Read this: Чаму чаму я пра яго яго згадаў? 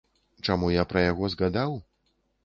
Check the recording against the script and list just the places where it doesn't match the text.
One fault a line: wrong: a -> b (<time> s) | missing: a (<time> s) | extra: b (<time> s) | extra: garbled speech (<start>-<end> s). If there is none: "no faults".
missing: чаму (0.7 s)
missing: яго (1.3 s)